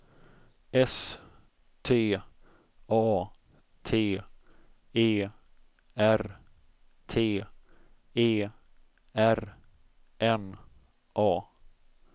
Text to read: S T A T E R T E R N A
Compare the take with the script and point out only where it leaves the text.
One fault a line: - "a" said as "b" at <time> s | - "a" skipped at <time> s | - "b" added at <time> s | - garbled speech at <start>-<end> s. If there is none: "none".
none